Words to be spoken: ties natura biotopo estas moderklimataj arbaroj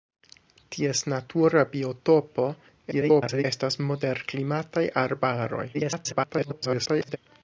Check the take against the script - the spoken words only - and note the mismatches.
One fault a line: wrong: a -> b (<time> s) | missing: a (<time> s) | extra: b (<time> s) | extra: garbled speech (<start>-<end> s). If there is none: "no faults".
extra: garbled speech (2.9-3.4 s)
extra: garbled speech (5.7-7.2 s)